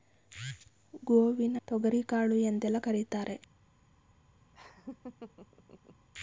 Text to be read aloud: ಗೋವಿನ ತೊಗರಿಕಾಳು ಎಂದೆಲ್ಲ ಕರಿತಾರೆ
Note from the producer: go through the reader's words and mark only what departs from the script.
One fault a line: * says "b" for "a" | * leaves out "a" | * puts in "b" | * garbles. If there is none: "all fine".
all fine